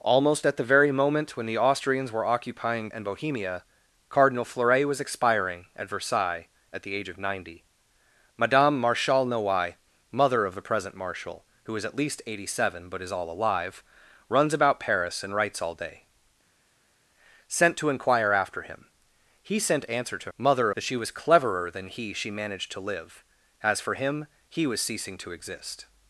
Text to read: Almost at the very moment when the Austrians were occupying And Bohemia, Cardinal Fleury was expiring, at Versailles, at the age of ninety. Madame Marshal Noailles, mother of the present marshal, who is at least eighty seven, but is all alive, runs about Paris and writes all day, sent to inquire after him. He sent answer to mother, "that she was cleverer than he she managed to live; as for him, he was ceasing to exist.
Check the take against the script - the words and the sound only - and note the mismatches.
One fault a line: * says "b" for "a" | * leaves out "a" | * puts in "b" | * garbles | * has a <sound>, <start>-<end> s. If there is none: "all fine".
all fine